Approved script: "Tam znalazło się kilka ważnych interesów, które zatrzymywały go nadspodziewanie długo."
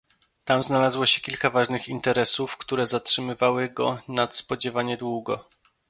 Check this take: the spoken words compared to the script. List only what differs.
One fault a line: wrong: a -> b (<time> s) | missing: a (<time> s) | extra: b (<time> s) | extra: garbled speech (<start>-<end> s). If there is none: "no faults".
no faults